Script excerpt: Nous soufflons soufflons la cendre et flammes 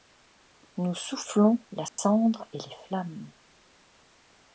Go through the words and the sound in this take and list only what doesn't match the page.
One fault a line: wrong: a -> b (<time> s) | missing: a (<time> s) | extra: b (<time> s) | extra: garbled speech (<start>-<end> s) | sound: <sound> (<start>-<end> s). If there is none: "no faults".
missing: soufflons (1.6 s)
sound: dropout (1.9-2.0 s)
extra: les (2.6 s)